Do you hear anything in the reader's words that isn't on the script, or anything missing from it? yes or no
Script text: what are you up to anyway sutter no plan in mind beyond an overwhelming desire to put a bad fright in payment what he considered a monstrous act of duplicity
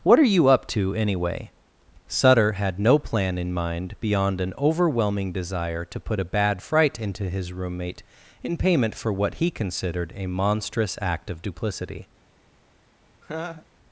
yes